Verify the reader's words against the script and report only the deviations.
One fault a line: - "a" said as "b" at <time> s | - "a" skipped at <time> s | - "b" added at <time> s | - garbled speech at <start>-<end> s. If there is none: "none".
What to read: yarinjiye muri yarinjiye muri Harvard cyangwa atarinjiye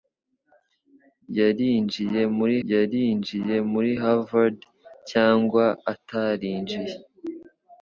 none